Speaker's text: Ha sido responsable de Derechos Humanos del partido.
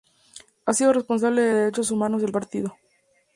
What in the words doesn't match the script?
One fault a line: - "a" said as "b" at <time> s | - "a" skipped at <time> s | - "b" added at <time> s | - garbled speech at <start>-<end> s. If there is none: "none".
none